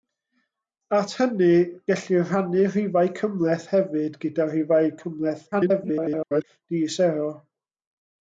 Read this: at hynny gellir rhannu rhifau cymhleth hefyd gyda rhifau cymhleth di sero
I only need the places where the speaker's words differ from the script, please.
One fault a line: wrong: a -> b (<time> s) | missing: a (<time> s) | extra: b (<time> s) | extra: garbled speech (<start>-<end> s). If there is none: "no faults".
extra: garbled speech (5.5-6.4 s)